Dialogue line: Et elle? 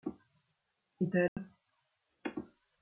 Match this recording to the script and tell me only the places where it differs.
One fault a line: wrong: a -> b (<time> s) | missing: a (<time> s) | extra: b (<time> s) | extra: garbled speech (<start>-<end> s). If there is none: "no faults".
no faults